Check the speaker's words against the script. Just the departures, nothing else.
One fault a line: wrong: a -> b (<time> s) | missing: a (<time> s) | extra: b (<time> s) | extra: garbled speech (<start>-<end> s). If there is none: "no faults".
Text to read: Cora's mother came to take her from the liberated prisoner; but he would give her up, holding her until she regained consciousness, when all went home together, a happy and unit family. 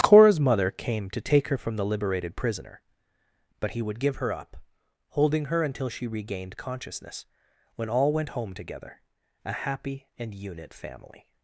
no faults